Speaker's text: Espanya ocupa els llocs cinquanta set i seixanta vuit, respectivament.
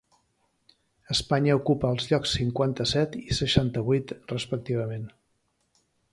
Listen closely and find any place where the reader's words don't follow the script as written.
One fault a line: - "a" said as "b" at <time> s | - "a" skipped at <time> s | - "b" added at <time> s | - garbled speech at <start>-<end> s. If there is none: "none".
none